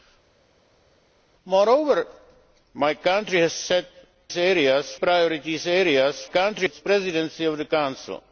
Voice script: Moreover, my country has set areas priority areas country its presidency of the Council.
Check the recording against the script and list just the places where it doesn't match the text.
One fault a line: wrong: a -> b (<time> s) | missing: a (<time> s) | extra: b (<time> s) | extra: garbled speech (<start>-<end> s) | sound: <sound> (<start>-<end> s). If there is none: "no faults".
no faults